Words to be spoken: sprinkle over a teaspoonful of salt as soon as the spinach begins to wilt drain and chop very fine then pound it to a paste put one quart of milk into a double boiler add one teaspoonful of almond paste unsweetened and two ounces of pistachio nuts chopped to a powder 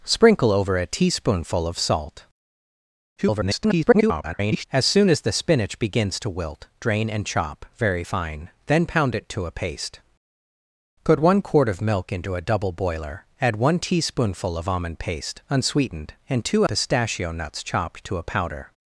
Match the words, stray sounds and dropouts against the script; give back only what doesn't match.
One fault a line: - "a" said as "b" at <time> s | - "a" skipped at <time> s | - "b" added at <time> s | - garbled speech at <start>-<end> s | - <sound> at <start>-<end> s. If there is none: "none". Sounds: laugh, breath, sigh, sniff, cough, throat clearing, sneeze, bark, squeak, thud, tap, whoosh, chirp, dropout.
- garbled speech at 3.2-4.6 s
- "ounces of" skipped at 16.6 s